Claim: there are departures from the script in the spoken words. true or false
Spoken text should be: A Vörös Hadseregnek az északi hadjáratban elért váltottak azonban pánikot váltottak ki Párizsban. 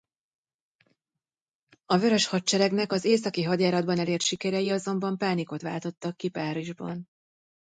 true